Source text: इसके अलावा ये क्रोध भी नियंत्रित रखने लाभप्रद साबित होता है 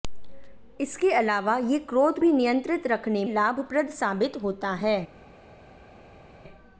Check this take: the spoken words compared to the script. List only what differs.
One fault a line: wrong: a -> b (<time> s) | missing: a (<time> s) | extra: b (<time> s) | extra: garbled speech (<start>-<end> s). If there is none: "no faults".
no faults